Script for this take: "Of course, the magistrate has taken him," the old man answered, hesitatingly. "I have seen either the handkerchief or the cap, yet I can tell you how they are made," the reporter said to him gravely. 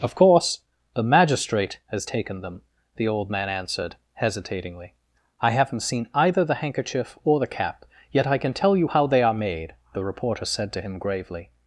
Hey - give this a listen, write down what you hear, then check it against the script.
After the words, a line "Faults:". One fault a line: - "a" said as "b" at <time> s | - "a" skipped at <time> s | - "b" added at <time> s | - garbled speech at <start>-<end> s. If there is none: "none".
"Of course, the magistrate has taken them," the old man answered, hesitatingly. "I haven't seen either the handkerchief or the cap, yet I can tell you how they are made," the reporter said to him gravely.
Faults:
- "him" said as "them" at 2.4 s
- "have" said as "haven't" at 5.5 s